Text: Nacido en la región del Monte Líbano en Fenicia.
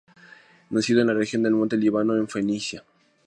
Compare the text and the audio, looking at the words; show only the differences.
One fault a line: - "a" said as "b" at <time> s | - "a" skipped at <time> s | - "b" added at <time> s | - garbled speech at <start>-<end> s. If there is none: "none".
none